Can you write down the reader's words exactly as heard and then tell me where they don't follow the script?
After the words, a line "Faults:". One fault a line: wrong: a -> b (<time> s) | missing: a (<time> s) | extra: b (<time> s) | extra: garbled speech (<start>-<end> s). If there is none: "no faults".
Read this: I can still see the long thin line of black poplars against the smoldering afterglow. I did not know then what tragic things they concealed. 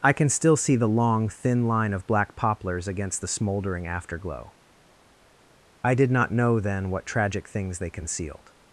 I can still see the long thin line of black poplars against the smoldering afterglow. I did not know then what tragic things they concealed.
Faults:
no faults